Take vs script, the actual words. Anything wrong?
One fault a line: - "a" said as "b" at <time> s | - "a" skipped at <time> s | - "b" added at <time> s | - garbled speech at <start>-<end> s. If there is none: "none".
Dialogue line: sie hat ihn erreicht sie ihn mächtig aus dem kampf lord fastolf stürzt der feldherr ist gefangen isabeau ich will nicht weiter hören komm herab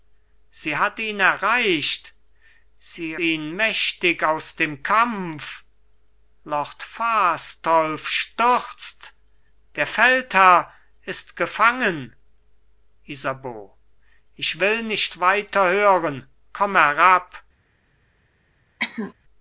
none